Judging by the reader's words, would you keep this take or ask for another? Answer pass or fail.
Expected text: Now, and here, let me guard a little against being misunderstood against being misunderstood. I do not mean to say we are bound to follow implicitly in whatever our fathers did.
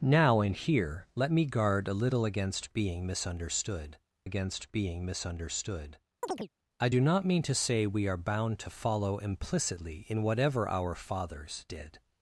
pass